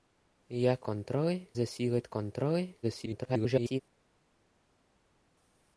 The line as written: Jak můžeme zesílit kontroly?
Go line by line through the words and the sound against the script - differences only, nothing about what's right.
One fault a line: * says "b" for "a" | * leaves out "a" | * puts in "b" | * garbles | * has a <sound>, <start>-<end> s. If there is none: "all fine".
* says "kontroly" for "můžeme"
* garbles